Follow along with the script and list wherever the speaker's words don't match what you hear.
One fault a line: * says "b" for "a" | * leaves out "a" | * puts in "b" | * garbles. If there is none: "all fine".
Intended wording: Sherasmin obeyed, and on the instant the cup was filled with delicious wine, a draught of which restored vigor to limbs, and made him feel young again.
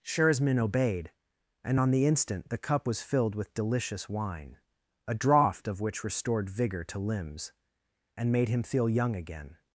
all fine